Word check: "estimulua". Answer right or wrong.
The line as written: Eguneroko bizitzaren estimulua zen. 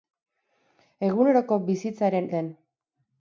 wrong